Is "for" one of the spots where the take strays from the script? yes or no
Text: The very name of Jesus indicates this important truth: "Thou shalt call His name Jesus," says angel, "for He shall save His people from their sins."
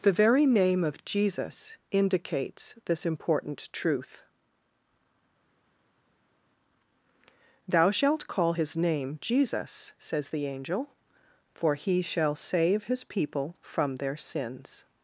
no